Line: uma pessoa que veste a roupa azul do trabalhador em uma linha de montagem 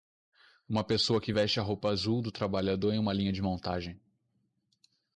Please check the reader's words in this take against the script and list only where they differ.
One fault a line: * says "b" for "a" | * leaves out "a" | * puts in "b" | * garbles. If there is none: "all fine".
all fine